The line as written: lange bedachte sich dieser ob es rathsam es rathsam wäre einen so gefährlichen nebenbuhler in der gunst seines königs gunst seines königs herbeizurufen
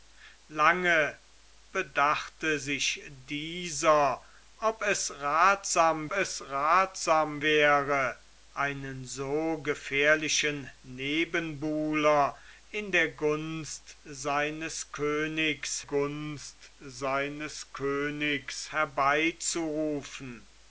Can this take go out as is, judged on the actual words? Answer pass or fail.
pass